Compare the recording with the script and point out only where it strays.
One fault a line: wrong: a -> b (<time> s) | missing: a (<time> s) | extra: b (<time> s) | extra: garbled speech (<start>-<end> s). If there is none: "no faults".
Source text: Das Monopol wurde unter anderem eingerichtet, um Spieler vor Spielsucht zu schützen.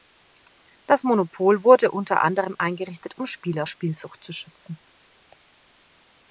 missing: vor (3.7 s)